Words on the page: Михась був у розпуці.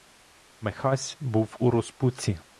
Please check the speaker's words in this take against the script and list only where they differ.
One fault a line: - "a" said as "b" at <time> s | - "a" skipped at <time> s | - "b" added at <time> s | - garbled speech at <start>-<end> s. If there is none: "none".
none